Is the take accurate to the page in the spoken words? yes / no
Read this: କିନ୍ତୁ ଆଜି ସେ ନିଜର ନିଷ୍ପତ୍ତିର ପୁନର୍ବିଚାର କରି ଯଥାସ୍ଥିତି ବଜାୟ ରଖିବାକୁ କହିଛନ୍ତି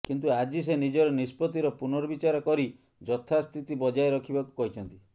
yes